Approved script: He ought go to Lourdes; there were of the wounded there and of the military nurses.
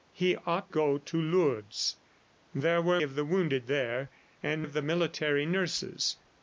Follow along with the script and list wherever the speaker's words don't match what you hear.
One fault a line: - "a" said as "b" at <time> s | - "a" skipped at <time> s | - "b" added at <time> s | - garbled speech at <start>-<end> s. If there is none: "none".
none